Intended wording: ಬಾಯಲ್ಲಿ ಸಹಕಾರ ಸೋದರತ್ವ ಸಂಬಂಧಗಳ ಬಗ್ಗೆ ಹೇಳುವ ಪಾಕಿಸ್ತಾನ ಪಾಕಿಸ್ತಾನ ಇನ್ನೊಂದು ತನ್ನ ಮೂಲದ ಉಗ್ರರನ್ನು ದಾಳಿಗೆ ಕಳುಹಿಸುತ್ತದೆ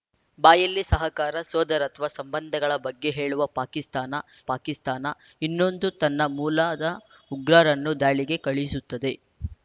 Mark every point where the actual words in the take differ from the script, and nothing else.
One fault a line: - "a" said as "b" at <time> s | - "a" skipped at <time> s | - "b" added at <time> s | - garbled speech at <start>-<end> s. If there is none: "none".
none